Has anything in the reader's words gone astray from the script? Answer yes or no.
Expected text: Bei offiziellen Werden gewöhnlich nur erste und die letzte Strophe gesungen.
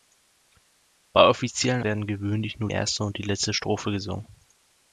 no